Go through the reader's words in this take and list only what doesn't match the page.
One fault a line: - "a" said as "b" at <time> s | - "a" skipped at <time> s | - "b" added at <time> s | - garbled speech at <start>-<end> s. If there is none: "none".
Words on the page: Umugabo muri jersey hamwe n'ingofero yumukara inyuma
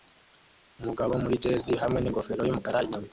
none